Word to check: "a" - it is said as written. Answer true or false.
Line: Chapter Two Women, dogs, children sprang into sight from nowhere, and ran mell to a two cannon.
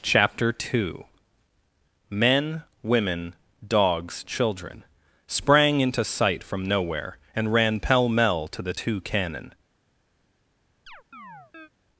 false